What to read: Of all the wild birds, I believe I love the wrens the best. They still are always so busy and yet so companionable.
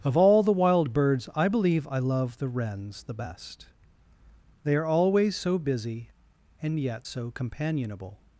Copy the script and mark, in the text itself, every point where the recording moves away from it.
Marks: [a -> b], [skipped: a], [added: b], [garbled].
Of all the wild birds, I believe I love the wrens the best. They [skipped: still] are always so busy and yet so companionable.